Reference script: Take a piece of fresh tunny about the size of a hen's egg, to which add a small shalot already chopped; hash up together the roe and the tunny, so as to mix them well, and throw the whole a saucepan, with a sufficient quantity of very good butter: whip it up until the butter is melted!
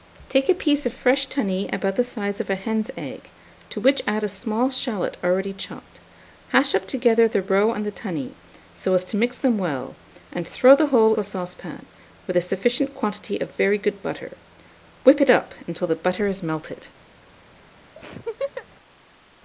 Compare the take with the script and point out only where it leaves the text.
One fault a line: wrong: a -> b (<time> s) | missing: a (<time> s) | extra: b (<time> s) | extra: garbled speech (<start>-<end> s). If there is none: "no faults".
no faults